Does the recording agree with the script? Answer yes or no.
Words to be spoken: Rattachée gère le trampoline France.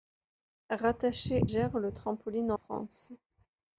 yes